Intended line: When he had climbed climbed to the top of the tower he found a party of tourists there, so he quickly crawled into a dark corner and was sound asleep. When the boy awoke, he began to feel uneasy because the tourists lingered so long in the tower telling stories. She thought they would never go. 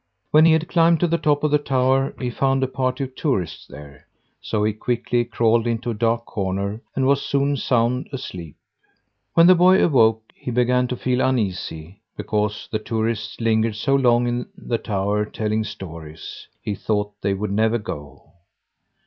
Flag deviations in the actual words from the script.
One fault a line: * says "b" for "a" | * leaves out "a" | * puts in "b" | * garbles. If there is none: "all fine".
* leaves out "climbed"
* puts in "soon"
* says "He" for "She"